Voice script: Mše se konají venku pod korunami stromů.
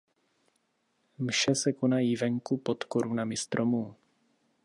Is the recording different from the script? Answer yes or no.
no